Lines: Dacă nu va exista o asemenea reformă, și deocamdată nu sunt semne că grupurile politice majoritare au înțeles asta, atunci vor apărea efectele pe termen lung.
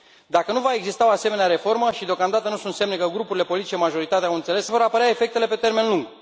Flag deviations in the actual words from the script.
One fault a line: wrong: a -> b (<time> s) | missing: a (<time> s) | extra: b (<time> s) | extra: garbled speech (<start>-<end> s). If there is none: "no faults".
missing: asta atunci (4.7 s)